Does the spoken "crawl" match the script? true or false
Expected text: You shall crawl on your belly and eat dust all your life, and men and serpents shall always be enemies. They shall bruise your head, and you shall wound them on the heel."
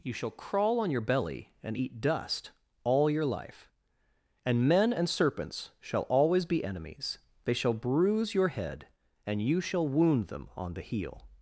true